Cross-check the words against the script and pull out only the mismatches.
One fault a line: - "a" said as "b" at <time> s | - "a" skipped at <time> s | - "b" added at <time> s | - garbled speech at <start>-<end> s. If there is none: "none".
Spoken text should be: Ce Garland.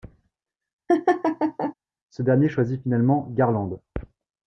- "dernier choisit finalement" added at 2.2 s